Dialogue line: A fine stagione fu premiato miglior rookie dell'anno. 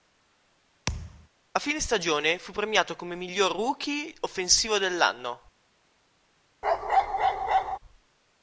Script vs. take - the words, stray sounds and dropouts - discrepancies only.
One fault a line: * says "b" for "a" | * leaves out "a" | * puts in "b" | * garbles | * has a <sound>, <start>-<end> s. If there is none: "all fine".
* has a thud, 0.9-1.3 s
* puts in "come"
* puts in "offensivo"
* has a bark, 6.6-7.8 s